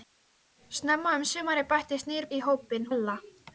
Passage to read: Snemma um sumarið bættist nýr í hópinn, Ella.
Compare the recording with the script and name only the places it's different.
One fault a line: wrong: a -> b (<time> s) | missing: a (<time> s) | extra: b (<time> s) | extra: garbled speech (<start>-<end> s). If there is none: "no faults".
no faults